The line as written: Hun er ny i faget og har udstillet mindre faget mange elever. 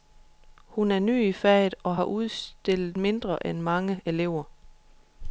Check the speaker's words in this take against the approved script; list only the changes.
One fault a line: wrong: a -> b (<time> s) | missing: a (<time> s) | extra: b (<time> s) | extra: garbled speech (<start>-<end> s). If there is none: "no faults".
wrong: faget -> end (3.5 s)